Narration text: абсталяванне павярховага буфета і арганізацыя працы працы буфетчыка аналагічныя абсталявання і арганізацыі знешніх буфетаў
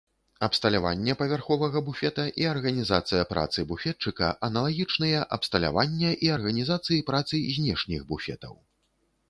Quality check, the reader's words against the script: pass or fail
fail